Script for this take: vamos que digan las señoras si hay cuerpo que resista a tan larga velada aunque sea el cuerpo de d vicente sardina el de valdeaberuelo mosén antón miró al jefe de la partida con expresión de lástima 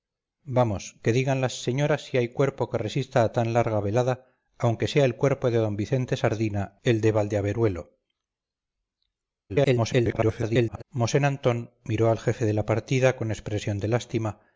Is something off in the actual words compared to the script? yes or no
yes